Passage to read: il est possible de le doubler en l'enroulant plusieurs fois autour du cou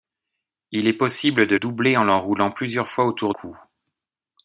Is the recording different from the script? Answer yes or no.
yes